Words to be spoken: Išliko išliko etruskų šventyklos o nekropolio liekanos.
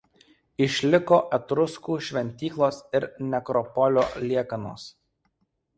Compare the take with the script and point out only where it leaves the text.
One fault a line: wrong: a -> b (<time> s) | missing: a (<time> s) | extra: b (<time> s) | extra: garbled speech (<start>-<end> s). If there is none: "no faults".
missing: išliko (1.2 s)
wrong: o -> ir (3.0 s)